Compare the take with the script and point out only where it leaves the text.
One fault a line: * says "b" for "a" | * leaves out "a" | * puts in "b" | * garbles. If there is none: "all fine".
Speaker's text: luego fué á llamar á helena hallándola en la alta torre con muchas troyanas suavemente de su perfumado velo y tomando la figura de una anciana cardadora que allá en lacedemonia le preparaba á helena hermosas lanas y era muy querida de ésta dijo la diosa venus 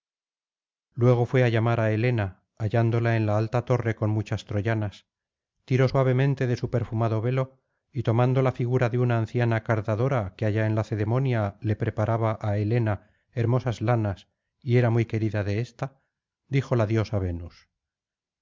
* puts in "tiró"